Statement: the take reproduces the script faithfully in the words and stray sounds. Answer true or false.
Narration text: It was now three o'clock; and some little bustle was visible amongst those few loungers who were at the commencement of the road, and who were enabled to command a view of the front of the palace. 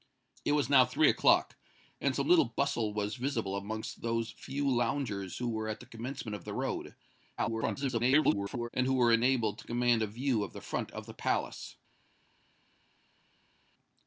false